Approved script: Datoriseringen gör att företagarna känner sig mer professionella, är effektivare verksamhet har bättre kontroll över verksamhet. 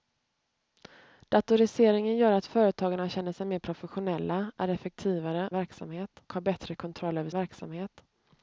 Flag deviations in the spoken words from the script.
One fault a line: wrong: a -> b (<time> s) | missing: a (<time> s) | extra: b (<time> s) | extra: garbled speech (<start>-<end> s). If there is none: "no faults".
no faults